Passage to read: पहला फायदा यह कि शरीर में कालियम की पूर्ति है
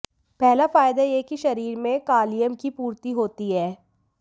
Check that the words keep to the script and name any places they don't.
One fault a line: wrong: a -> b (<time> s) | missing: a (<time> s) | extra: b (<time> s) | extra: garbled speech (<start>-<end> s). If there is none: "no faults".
extra: होती (3.1 s)